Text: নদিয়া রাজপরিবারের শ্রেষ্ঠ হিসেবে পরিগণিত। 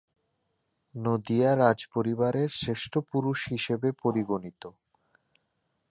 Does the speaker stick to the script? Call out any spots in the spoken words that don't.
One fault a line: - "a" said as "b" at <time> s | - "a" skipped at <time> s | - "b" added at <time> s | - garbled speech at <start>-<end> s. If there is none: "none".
- "পুরুষ" added at 3.1 s